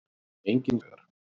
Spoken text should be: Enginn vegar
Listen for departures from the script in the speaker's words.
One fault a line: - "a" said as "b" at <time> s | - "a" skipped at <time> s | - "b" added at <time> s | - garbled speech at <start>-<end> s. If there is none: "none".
none